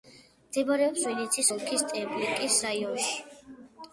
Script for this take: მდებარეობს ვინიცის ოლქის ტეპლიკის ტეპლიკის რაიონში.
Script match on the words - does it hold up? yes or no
no